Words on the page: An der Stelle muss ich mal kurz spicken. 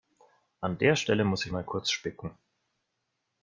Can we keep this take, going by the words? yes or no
yes